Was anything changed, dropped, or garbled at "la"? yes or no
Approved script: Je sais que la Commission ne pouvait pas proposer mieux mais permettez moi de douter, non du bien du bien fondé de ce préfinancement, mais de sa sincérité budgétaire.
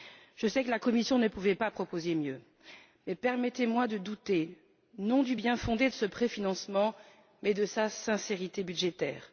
no